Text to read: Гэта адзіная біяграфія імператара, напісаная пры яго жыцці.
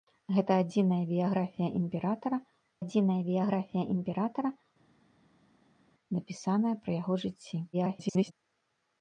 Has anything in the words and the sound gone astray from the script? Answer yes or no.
yes